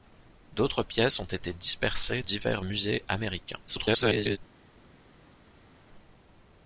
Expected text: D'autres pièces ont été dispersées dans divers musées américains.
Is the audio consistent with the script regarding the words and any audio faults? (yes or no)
no